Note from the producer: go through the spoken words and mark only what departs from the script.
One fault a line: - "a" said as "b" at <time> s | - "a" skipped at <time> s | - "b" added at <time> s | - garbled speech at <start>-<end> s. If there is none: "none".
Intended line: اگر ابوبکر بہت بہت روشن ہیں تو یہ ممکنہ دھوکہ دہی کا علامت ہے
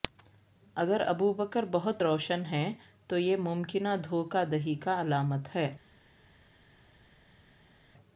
- "بہت" skipped at 2.0 s